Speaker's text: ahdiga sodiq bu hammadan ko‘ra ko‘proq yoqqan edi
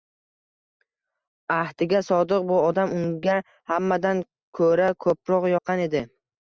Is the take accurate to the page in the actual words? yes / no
no